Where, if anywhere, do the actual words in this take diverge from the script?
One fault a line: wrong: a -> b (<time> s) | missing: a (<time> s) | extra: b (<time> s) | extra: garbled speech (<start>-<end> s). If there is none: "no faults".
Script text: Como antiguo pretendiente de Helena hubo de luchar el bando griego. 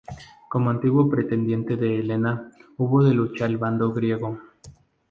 no faults